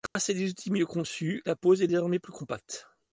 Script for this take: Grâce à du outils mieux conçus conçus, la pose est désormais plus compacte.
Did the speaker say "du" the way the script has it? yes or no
no